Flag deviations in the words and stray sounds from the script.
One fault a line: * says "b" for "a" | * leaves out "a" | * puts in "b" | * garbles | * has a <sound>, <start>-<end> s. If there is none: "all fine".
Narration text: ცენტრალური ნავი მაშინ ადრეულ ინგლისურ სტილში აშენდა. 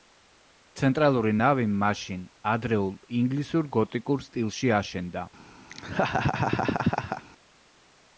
* puts in "გოტიკურ"
* has a laugh, 5.7-7.2 s